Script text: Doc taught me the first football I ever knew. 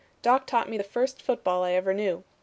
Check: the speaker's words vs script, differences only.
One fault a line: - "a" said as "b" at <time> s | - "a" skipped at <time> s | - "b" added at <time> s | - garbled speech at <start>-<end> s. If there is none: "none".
none